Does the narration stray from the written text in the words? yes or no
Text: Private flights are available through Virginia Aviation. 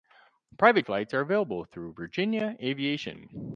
no